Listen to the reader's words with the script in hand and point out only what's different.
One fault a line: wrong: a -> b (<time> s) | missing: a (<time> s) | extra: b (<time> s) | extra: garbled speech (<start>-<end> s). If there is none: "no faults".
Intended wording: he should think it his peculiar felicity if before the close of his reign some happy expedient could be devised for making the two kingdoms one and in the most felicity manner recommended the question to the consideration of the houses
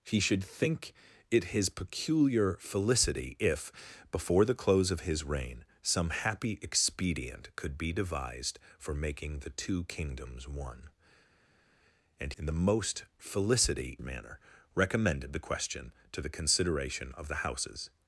no faults